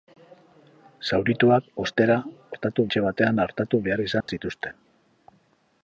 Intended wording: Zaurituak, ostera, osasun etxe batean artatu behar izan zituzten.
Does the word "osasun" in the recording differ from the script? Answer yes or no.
yes